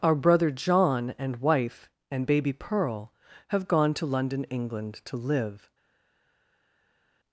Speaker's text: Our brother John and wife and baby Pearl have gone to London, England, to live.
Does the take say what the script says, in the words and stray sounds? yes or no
yes